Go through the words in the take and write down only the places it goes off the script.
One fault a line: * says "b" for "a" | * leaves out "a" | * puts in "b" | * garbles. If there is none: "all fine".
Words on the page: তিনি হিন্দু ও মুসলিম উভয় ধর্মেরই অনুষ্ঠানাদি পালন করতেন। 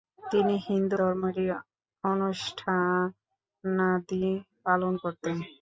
* leaves out "ও মুসলিম উভয়"